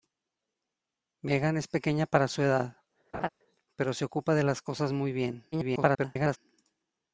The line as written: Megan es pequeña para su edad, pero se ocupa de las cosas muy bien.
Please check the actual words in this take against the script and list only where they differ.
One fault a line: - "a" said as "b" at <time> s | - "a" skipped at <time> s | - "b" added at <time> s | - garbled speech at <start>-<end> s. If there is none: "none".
- garbled speech at 5.5-6.4 s